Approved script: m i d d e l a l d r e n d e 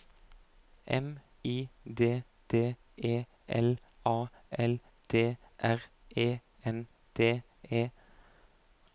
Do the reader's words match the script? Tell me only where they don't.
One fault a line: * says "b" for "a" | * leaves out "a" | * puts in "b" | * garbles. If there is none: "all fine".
all fine